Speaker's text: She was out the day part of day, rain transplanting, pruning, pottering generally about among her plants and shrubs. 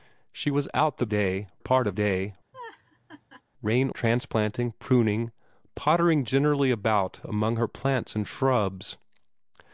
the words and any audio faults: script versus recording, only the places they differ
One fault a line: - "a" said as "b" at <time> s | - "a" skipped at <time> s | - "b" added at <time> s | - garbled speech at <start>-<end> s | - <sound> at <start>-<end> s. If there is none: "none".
- laugh at 2.5-3.4 s